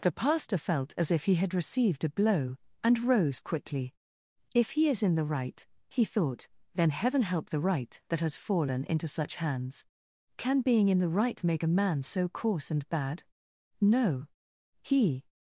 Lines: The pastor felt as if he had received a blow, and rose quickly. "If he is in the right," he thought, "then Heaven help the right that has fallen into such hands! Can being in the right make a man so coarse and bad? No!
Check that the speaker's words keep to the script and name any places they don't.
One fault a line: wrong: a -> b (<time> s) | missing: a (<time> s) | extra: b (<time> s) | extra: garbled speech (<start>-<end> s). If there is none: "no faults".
extra: He (14.8 s)